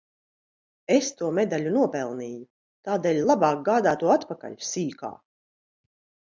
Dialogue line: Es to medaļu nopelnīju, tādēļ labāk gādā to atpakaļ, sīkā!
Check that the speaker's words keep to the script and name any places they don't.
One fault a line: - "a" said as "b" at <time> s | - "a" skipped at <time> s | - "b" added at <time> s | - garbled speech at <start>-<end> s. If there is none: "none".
none